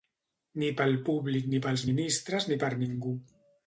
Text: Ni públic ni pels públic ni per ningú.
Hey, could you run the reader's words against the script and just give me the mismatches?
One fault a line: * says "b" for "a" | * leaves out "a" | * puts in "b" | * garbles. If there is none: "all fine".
* puts in "pel"
* says "ministres" for "públic"